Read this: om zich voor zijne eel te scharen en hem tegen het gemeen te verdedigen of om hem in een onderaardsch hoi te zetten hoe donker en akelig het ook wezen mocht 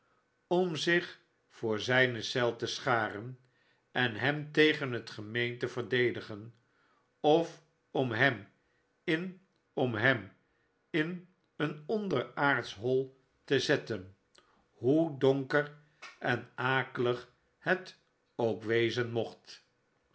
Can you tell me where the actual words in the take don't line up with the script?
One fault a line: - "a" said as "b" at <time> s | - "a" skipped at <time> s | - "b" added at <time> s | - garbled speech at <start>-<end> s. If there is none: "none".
- "om hem in" added at 9.7 s